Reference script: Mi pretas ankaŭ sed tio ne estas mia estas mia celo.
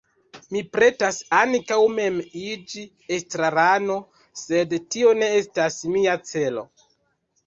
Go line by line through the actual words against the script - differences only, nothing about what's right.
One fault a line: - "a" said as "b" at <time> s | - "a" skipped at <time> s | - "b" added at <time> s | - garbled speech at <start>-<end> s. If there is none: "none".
- "mem iĝi estrarano" added at 1.9 s
- "estas mia" skipped at 6.1 s